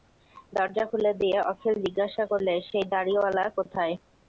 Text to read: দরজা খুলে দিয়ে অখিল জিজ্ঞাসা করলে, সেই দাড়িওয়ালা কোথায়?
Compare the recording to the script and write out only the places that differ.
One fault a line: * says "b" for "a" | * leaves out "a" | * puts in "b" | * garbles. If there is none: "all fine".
all fine